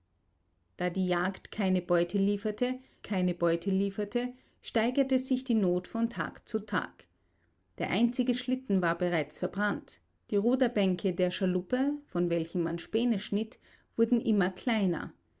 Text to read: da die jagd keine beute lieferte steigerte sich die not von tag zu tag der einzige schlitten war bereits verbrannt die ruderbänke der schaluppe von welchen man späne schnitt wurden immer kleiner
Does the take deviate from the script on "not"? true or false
false